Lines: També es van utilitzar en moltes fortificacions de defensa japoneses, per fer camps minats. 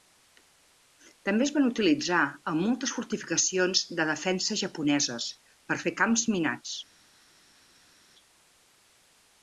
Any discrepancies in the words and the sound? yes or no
no